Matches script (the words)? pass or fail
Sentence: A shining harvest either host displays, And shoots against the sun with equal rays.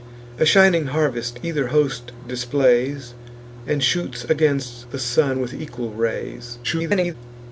fail